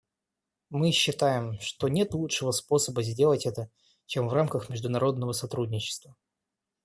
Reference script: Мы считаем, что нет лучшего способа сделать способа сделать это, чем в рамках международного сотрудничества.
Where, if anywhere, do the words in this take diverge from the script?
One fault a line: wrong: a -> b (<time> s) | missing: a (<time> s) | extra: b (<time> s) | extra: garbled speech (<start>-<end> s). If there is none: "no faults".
missing: способа сделать (3.5 s)